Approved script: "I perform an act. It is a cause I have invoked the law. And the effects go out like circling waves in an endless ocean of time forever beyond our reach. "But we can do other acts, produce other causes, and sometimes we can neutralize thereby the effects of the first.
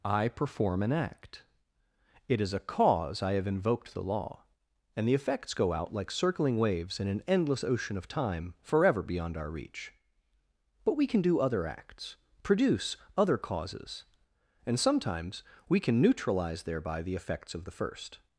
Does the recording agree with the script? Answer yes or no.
yes